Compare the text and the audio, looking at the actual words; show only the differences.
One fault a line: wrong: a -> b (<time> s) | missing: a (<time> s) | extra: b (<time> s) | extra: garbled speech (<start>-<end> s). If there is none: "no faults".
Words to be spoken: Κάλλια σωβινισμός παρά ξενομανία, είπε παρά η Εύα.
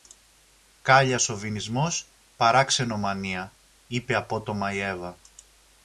wrong: παρά -> απότομα (4.2 s)